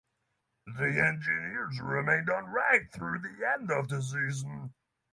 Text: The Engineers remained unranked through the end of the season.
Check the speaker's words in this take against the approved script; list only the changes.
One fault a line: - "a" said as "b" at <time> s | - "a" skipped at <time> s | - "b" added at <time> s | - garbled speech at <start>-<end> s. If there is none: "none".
none